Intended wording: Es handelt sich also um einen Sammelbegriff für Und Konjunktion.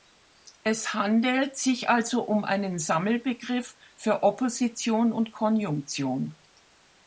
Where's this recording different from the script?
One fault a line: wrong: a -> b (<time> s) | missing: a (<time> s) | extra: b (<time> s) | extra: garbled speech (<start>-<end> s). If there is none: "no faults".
extra: Opposition (4.2 s)